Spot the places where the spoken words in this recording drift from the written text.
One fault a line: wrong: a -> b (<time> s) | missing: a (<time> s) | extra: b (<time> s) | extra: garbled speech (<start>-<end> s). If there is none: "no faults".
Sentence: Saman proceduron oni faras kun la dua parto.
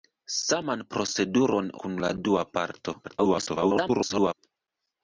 missing: oni faras (1.7 s)
extra: garbled speech (3.0-4.3 s)